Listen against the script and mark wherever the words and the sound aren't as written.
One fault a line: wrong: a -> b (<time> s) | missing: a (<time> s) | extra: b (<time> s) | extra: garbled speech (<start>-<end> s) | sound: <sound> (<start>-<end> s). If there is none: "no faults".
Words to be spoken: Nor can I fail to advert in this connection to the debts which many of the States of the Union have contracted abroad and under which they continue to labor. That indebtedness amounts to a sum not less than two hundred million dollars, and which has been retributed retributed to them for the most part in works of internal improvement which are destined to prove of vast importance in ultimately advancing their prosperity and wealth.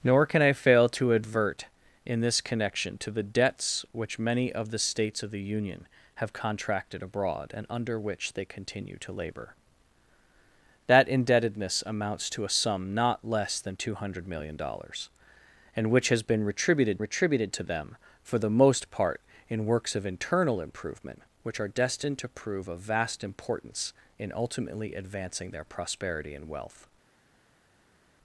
no faults